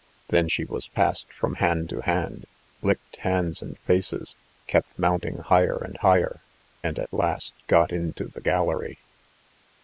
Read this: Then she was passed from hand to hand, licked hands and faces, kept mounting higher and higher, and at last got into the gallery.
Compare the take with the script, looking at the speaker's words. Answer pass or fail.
pass